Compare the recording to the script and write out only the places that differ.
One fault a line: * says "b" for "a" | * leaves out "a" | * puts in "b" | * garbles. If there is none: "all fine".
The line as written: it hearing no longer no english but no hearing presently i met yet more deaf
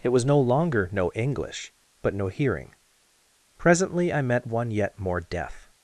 * says "was" for "hearing"
* puts in "one"